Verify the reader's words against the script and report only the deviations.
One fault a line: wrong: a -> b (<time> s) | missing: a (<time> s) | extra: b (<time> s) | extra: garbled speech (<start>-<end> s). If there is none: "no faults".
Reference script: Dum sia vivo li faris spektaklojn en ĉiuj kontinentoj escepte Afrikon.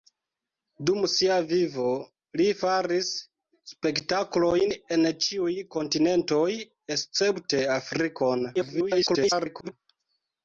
extra: garbled speech (8.5-9.7 s)